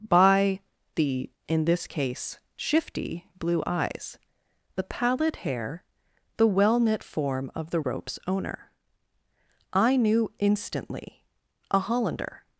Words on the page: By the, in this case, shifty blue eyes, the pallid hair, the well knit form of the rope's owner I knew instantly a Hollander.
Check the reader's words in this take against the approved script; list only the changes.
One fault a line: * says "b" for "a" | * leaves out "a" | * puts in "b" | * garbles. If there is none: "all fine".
all fine